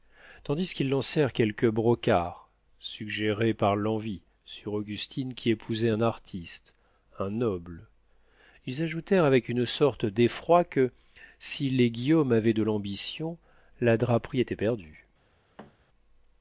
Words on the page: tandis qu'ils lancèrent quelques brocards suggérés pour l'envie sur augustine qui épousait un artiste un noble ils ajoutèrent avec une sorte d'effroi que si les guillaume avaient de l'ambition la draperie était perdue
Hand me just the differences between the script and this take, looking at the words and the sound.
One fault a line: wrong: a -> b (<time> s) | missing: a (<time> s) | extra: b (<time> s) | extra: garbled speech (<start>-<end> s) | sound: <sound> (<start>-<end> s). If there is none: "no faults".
wrong: pour -> par (3.5 s)
sound: thud (15.6-15.8 s)